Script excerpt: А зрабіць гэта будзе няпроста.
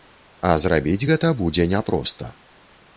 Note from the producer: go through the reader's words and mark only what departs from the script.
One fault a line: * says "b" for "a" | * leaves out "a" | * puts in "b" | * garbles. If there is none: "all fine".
all fine